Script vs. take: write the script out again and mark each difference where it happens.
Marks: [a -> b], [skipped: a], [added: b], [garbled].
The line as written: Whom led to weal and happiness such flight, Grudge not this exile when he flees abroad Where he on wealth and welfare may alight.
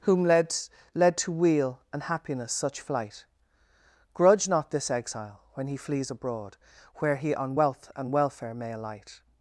Whom led [added: led] to weal and happiness such flight, Grudge not this exile when he flees abroad Where he on wealth and welfare may alight.